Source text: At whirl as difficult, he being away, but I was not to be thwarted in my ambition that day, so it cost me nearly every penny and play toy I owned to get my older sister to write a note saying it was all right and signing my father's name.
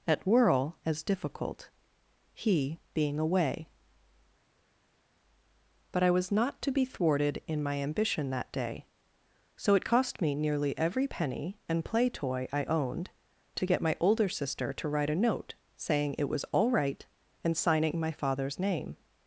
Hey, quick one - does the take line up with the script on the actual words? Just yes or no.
yes